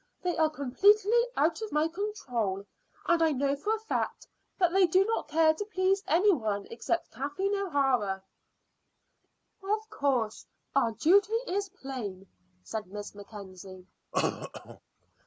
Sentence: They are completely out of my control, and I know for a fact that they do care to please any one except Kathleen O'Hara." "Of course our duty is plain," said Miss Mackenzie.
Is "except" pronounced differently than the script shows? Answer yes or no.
no